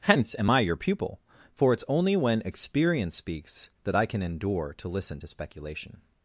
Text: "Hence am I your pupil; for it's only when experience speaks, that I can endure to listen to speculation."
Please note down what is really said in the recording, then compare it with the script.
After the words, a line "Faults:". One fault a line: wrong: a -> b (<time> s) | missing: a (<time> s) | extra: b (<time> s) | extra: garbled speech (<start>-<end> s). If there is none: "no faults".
"Hence am I your pupil; for it's only when experience speaks, that I can endure to listen to speculation."
Faults:
no faults